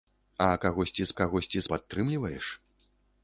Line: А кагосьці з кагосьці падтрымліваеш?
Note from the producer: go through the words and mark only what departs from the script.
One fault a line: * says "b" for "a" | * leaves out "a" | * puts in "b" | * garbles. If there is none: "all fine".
all fine